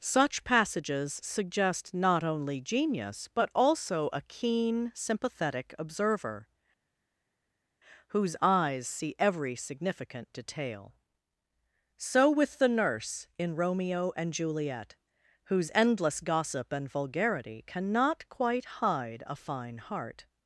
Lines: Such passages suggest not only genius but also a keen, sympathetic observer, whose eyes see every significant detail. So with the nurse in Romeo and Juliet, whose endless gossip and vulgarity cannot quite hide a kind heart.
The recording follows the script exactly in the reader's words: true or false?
false